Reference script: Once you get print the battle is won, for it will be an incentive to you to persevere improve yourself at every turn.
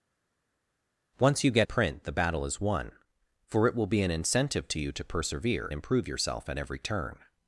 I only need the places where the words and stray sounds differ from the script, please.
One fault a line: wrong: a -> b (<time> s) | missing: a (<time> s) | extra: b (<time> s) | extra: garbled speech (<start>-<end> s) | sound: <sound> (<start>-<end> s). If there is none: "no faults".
no faults